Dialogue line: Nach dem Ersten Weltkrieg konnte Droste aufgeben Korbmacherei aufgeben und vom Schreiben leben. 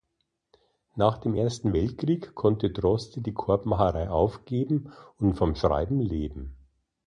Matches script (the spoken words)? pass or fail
fail